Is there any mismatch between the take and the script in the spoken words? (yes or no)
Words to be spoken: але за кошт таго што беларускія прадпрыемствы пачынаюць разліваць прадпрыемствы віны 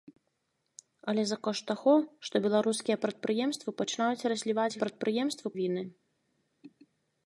no